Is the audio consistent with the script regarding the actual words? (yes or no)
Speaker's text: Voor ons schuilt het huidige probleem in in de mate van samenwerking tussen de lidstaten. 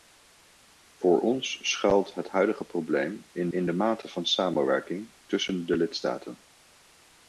yes